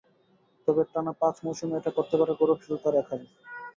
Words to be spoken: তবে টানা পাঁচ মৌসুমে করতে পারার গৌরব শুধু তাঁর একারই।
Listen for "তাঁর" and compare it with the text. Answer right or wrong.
right